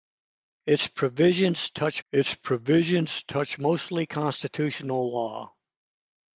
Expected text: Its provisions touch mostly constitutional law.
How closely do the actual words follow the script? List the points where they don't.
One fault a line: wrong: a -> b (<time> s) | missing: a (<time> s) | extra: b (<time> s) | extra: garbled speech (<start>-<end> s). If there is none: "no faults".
extra: its provisions touch (2.1 s)